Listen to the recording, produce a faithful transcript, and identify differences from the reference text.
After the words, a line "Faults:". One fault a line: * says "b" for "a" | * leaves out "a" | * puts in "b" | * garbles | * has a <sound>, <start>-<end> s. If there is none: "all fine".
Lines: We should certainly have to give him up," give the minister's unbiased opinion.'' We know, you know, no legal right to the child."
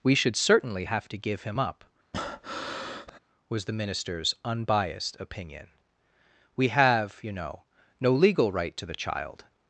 We should certainly have to give him up," was the minister's unbiased opinion.'' We have, you know, no legal right to the child."
Faults:
* has a breath, 2.1-3.2 s
* says "was" for "give"
* says "have" for "know"